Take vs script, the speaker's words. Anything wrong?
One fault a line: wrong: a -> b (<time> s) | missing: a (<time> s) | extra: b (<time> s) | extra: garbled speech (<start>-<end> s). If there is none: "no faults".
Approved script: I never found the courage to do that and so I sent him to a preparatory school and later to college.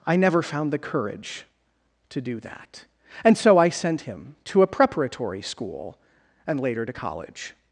no faults